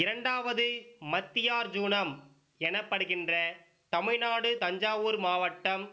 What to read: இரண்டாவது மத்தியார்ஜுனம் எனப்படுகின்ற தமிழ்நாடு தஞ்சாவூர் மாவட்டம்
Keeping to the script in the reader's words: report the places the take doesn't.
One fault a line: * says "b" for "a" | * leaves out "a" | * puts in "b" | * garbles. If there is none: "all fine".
all fine